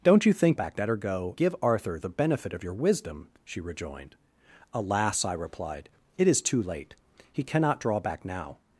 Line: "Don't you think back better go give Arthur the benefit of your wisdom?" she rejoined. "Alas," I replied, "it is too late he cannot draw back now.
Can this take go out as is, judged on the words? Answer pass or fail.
pass